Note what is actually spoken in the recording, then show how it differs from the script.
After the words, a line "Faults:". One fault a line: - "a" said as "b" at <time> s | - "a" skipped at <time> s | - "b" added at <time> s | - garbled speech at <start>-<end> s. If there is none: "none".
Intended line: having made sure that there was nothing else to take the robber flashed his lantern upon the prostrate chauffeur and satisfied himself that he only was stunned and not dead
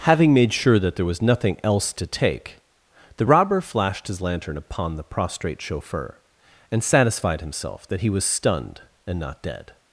having made sure that there was nothing else to take the robber flashed his lantern upon the prostrate chauffeur and satisfied himself that he was stunned and not dead
Faults:
- "only" skipped at 8.1 s